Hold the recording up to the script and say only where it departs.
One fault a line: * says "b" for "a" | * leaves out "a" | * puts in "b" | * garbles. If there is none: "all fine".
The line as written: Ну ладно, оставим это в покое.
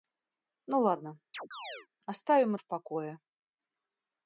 * leaves out "это"